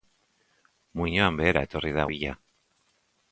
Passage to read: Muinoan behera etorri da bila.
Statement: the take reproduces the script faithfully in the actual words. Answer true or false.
true